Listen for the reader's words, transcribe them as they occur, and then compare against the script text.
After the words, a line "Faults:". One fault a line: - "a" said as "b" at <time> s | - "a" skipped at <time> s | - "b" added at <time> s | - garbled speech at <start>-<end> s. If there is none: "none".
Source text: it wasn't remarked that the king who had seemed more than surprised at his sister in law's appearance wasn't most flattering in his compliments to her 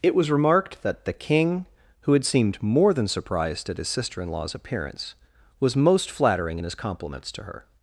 it was remarked that the king who had seemed more than surprised at his sister in law's appearance was most flattering in his compliments to her
Faults:
- "wasn't" said as "was" at 0.1 s
- "wasn't" said as "was" at 5.6 s